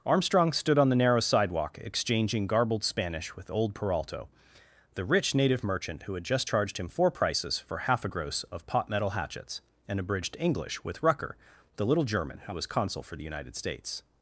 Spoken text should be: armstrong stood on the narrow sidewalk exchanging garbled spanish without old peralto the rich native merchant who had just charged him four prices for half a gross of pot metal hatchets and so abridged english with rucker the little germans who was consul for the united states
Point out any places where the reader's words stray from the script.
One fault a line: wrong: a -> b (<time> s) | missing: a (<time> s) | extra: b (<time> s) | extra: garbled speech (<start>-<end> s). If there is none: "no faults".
wrong: without -> with (3.4 s)
missing: so (10.0 s)
wrong: germans -> german (12.0 s)